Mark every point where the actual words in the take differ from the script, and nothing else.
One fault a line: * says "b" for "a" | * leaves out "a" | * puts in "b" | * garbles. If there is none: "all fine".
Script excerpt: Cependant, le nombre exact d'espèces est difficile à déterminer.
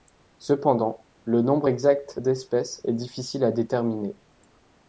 all fine